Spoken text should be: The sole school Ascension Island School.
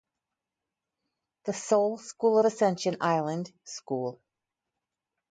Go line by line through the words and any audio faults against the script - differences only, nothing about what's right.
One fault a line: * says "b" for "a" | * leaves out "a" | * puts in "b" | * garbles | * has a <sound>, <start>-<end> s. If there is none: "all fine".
all fine